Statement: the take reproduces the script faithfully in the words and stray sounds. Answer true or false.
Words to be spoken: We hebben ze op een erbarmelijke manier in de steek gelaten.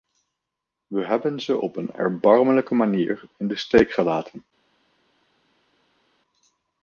true